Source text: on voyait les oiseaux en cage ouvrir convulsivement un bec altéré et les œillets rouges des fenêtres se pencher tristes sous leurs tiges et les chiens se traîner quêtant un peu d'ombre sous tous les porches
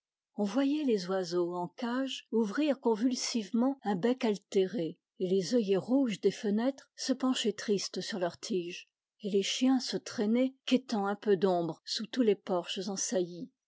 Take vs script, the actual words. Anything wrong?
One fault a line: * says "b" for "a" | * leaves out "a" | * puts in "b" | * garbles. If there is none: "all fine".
* says "sur" for "sous"